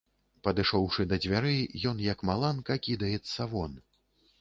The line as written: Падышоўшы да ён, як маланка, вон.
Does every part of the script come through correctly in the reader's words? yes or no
no